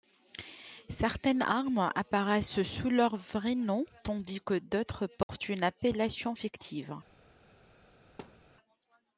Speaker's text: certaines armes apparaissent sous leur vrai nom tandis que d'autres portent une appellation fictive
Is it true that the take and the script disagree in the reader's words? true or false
false